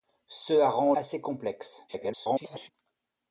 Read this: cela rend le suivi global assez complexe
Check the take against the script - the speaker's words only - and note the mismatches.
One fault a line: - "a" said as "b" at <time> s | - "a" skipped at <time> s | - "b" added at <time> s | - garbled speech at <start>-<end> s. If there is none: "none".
- "le suivi global" skipped at 0.9 s
- garbled speech at 1.9-2.7 s